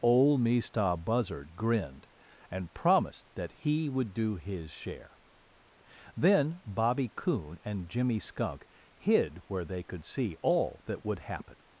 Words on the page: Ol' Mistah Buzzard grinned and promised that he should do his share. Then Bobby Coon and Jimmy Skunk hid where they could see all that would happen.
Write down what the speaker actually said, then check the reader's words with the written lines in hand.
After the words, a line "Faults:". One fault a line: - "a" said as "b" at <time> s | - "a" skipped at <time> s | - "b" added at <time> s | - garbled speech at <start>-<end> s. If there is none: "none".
Ol' Mistah Buzzard grinned and promised that he would do his share. Then Bobby Coon and Jimmy Skunk hid where they could see all that would happen.
Faults:
- "should" said as "would" at 3.9 s